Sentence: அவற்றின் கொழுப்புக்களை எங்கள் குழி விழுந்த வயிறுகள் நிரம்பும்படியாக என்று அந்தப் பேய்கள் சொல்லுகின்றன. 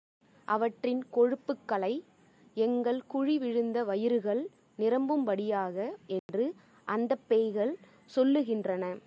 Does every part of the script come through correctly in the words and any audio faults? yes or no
no